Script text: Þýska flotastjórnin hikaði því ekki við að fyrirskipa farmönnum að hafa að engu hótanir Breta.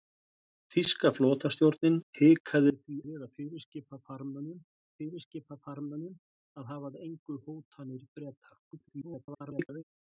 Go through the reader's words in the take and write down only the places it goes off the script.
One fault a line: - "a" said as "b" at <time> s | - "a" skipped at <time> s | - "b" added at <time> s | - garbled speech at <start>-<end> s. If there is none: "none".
- "ekki" skipped at 3.0 s
- "fyrirskipa farmönnum" added at 5.0 s
- garbled speech at 8.7-9.8 s